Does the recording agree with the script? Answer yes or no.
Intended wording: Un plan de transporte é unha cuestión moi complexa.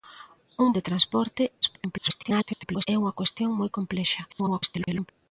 no